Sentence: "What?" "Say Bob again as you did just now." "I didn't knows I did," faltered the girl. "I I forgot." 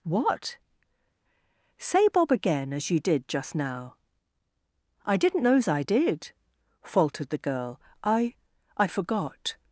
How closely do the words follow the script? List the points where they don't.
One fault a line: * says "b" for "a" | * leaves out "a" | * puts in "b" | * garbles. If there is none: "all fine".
all fine